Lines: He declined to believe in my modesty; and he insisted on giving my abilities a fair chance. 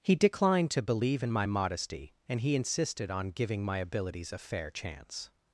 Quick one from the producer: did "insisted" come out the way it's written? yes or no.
yes